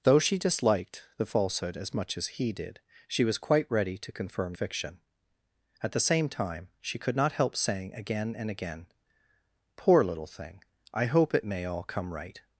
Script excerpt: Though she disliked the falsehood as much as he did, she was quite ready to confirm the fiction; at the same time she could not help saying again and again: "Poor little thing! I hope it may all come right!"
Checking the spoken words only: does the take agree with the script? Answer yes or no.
no